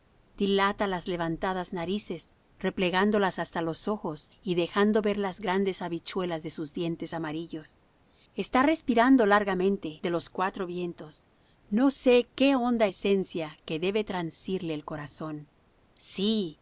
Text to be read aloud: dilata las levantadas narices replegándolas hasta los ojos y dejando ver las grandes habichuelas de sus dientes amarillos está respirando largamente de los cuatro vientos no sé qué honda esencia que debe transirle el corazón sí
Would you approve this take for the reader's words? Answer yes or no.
yes